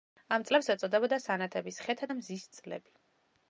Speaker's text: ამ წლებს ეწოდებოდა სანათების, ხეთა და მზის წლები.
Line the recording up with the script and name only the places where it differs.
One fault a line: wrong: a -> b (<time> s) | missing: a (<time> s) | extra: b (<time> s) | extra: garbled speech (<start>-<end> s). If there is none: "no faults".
no faults